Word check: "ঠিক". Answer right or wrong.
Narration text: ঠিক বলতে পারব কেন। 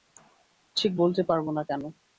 right